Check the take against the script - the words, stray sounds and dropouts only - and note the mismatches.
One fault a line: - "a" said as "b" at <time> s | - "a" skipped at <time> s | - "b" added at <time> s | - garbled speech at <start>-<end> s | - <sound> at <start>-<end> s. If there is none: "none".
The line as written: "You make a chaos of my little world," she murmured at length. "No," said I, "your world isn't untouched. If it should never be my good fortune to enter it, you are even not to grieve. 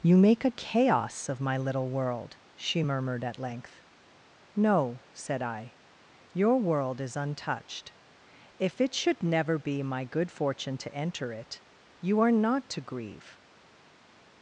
- "isn't" said as "is" at 7.0 s
- "even" skipped at 12.3 s